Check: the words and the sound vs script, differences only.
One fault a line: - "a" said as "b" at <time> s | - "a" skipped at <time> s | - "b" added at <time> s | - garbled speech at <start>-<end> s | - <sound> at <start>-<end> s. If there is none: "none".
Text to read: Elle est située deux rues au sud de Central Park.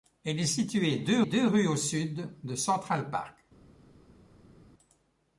- "deux" added at 1.2 s